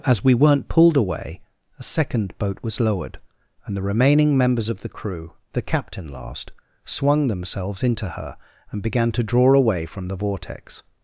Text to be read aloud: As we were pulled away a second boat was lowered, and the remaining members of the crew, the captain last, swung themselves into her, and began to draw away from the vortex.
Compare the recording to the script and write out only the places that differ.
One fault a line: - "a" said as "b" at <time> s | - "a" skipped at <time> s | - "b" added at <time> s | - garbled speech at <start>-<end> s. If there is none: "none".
- "were" said as "weren't" at 0.3 s